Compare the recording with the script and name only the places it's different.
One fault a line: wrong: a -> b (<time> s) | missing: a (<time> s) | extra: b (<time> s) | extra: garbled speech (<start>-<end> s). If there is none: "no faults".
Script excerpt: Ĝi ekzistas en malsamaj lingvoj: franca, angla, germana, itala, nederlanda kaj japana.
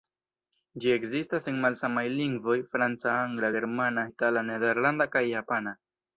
no faults